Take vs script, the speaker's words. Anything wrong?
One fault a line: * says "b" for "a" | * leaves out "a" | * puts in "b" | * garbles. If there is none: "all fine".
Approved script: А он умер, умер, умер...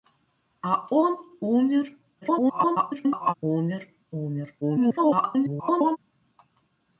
* garbles
* garbles